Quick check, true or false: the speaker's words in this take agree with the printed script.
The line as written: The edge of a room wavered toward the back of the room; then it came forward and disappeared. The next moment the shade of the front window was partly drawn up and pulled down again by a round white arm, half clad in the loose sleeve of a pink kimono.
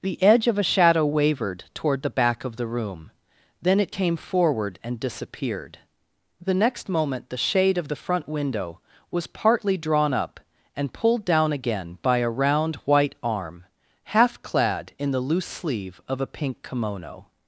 false